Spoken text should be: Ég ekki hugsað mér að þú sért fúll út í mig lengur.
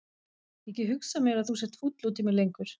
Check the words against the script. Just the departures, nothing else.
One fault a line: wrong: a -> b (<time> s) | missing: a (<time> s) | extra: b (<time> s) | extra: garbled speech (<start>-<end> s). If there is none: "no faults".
no faults